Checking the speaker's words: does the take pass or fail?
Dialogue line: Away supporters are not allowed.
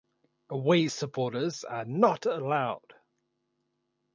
pass